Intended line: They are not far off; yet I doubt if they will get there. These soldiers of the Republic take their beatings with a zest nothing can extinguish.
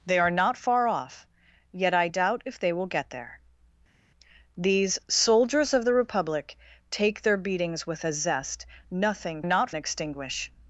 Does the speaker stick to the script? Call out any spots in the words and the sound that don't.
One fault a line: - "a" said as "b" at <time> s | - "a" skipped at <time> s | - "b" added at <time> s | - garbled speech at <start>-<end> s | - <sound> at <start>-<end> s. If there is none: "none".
- "can" said as "not" at 9.4 s